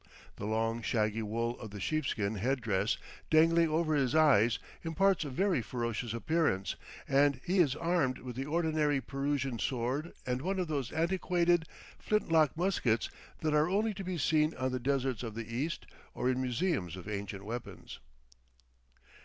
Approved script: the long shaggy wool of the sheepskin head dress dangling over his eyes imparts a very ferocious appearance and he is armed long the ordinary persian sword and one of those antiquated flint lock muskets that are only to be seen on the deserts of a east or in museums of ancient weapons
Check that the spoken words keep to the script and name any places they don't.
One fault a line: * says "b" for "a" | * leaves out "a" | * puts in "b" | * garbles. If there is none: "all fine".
* says "with" for "long"
* says "the" for "a"